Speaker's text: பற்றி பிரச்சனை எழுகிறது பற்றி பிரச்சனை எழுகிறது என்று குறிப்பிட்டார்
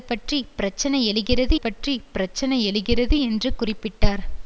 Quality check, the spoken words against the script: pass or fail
pass